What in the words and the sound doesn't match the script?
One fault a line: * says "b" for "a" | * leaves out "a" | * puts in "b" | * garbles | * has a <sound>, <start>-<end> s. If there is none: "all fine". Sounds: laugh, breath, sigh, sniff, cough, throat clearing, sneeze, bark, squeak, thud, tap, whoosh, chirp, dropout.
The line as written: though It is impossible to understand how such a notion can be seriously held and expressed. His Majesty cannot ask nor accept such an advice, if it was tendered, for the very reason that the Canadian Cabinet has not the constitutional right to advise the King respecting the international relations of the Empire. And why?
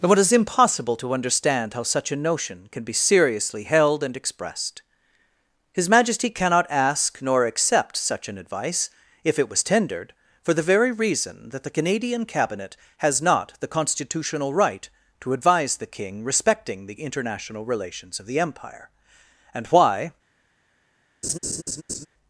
* has a laugh, 21.2-22.1 s